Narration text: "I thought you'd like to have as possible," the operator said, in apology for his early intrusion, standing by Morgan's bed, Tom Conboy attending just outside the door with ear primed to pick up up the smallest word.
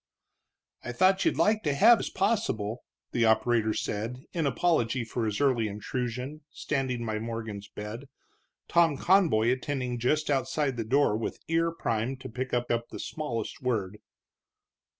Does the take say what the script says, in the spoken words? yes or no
yes